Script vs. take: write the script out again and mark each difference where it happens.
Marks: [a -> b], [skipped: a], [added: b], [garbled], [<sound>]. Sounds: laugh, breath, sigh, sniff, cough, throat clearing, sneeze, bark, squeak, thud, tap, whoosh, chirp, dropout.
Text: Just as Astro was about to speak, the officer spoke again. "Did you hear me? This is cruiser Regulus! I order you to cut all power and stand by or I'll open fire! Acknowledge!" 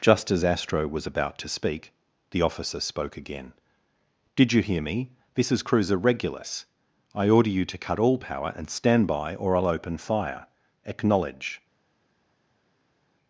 Just as Astro was about to speak, the officer spoke again. "Did you hear me? This is cruiser Regulus! I order you to cut all power and stand by or I'll open fire! Acknowledge!"